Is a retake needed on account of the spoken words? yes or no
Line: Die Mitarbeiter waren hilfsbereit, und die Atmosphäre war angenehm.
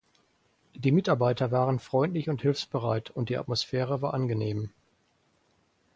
yes